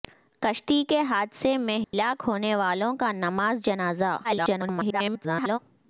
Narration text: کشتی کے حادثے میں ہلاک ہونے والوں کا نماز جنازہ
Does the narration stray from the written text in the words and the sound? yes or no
yes